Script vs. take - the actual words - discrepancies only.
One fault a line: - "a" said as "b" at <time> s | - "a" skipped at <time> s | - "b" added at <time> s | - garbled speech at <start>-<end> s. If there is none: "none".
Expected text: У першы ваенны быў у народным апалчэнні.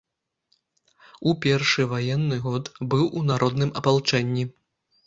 - "год" added at 2.5 s